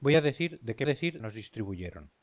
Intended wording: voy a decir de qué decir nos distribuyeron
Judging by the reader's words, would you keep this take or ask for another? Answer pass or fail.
pass